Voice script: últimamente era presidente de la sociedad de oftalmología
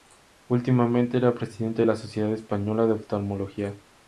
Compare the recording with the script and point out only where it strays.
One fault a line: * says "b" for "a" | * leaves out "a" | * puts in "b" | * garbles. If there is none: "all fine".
* puts in "española"